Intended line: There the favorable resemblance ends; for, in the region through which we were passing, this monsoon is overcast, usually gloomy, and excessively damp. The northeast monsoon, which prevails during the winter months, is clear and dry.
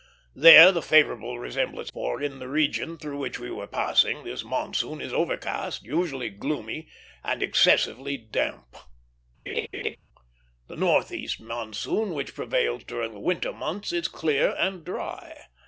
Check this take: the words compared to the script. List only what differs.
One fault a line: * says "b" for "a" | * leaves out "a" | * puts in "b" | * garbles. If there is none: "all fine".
* leaves out "ends"